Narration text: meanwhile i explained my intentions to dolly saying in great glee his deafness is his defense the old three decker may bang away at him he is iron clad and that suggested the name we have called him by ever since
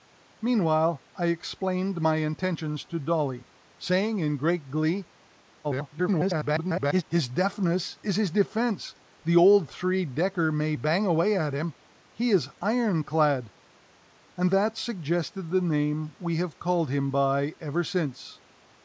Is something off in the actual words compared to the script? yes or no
yes